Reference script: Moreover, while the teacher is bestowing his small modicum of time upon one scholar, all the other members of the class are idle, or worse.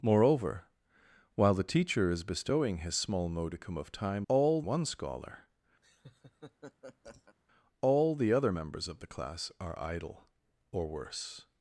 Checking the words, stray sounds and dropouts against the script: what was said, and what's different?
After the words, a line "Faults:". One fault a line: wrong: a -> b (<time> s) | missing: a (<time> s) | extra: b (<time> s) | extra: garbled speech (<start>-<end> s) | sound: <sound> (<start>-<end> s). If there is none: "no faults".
Moreover, while the teacher is bestowing his small modicum of time all one scholar, all the other members of the class are idle, or worse.
Faults:
wrong: upon -> all (4.3 s)
sound: laugh (5.8-7.4 s)